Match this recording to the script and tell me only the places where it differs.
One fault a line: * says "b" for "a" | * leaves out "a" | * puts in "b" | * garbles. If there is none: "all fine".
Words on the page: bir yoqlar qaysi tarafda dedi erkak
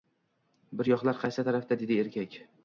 all fine